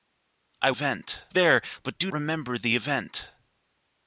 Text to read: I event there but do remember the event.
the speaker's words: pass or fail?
pass